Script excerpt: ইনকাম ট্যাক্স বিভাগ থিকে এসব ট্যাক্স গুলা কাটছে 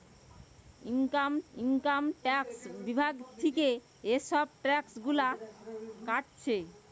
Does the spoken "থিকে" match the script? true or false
true